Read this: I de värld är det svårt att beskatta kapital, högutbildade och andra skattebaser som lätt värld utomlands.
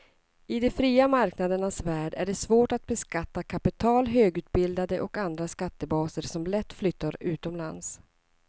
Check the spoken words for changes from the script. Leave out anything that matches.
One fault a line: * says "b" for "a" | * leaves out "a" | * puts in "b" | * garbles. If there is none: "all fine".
* puts in "fria marknadernas"
* says "flyttar" for "värld"